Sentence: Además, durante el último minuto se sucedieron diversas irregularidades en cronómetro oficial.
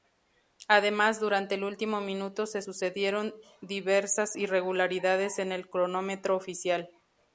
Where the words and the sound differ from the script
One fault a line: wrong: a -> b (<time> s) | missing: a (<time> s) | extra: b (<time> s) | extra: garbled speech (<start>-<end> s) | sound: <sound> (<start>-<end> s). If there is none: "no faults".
extra: el (5.5 s)